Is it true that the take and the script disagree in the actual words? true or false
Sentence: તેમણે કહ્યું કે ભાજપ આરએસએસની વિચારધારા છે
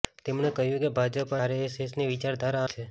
false